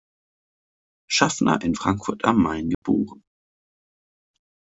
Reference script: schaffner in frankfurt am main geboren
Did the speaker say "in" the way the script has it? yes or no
yes